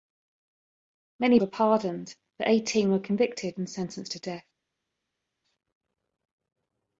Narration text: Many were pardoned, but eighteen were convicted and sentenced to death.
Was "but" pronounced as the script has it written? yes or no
yes